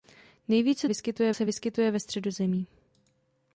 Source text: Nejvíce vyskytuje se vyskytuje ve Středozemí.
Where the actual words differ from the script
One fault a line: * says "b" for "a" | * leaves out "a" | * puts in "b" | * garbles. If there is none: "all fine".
all fine